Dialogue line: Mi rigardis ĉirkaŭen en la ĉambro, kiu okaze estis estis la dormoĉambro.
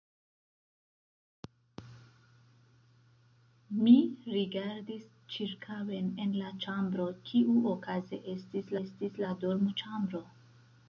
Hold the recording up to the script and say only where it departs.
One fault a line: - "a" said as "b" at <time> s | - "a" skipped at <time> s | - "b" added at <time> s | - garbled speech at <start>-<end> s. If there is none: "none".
none